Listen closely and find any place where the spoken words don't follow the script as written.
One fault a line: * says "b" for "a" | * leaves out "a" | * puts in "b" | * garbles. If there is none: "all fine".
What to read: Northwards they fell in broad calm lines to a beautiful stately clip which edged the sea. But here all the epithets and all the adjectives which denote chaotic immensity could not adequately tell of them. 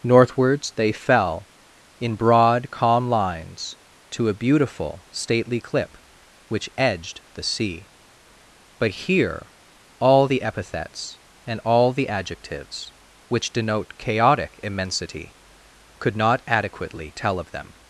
all fine